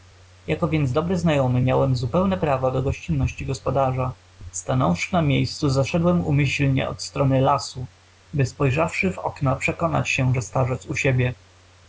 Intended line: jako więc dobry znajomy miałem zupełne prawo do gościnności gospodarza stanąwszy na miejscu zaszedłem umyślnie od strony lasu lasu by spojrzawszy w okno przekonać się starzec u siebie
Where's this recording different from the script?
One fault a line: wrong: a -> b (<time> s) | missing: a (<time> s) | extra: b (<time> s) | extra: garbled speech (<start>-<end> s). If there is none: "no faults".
missing: lasu (7.9 s)
extra: że (10.3 s)